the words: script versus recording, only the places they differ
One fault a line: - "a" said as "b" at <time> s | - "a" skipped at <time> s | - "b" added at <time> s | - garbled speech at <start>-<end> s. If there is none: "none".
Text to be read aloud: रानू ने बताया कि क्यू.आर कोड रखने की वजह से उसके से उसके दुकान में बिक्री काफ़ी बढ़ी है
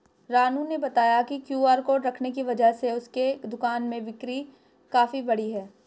- "से उसके" skipped at 3.3 s